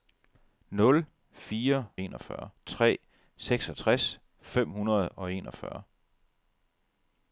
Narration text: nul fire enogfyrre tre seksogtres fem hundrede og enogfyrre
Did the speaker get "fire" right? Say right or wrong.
right